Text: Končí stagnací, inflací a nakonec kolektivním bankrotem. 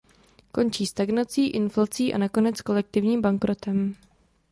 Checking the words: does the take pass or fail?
pass